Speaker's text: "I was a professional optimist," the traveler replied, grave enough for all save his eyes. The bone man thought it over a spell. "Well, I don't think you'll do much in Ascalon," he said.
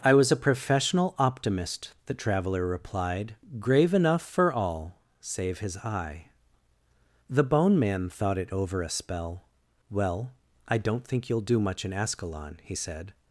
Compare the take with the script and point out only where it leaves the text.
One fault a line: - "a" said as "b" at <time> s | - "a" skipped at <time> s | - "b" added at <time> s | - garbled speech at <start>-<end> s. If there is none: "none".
- "eyes" said as "eye" at 5.8 s